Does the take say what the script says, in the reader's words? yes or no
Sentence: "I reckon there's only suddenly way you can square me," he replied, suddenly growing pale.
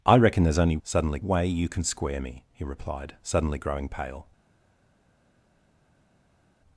yes